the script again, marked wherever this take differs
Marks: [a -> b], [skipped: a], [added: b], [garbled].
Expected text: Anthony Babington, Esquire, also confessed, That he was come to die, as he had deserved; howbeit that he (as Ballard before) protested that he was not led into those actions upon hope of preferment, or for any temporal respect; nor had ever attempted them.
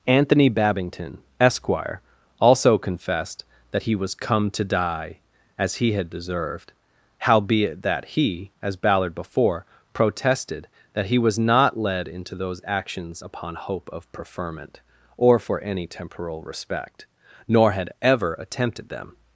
Anthony Babington, Esquire, also confessed, That he was come to die, as he had deserved; howbeit that he (as Ballard before) protested that he was not led into those actions upon hope of preferment, or for any temporal respect; nor had ever attempted them.